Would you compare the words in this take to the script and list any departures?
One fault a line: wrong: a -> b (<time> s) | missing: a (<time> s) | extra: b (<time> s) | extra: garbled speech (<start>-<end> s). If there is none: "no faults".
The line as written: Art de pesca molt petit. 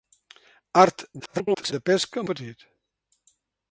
extra: garbled speech (1.2-1.7 s)
missing: molt (2.3 s)